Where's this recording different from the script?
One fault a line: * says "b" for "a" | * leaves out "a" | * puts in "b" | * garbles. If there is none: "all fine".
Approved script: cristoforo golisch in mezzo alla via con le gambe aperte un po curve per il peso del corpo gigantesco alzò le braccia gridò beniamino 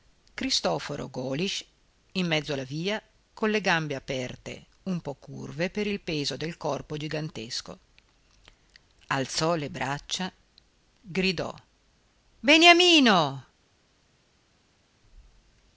all fine